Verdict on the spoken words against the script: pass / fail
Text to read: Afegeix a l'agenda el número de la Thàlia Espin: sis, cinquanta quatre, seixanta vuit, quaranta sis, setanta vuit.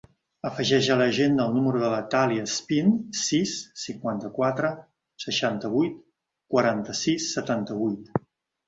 pass